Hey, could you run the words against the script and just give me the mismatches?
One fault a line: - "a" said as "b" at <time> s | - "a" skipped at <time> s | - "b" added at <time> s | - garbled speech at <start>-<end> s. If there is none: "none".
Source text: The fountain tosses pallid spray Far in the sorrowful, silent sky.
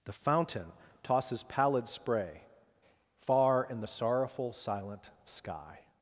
none